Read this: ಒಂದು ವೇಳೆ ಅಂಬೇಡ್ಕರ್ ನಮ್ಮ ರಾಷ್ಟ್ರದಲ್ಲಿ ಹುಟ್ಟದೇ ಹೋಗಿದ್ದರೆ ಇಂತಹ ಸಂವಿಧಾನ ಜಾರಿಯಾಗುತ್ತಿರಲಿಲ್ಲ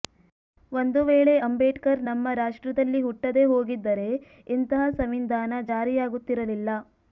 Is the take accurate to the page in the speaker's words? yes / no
yes